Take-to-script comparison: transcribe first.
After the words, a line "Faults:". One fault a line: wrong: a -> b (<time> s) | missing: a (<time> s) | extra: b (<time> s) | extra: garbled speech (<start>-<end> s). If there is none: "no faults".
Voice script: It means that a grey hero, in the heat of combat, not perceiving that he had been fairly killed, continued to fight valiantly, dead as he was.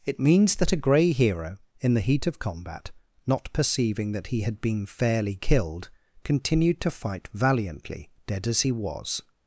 It means that a grey hero, in the heat of combat, not perceiving that he had been fairly killed, continued to fight valiantly, dead as he was.
Faults:
no faults